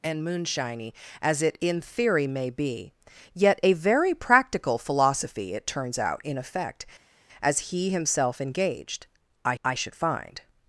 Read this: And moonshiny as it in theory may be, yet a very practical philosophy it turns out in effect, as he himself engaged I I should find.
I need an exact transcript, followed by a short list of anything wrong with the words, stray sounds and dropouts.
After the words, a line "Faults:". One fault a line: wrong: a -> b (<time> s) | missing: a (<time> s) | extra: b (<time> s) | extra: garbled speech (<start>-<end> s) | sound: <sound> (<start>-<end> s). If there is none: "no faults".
And moonshiny as it in theory may be, yet a very practical philosophy it turns out in effect, as he himself engaged I I should find.
Faults:
no faults